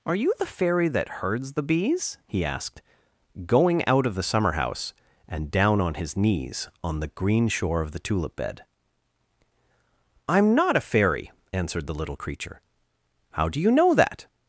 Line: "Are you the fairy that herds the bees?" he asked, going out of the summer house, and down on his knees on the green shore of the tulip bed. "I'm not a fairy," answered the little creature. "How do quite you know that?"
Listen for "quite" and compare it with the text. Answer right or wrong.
wrong